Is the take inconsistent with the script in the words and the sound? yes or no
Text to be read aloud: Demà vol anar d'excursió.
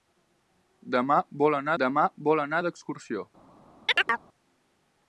yes